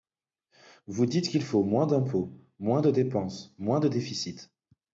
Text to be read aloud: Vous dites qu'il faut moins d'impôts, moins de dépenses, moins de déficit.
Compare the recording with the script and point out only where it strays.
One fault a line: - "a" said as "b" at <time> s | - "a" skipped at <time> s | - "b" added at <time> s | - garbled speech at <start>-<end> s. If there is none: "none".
none